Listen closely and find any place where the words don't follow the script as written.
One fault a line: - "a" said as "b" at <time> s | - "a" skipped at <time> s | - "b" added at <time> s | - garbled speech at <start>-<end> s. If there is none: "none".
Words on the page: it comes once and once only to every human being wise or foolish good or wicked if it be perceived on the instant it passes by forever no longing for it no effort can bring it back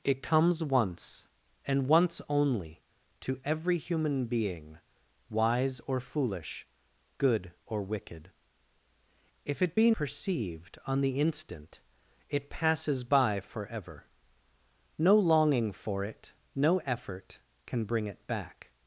none